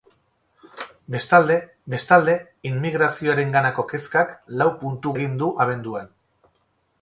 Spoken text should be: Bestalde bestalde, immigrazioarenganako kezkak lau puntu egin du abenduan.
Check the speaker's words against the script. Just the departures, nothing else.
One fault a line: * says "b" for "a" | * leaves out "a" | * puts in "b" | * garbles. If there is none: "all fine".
all fine